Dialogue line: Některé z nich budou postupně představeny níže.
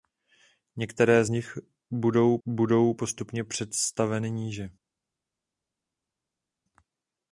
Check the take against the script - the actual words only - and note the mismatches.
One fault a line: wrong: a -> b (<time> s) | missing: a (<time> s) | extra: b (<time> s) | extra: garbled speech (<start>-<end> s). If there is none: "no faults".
extra: budou (2.5 s)